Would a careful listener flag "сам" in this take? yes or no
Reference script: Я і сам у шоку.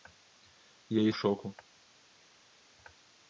yes